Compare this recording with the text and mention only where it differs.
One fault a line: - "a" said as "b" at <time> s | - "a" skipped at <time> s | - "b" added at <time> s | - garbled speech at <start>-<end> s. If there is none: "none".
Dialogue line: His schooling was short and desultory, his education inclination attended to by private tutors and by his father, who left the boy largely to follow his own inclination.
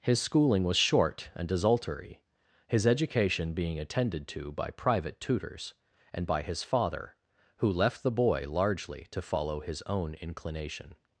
- "inclination" said as "being" at 3.5 s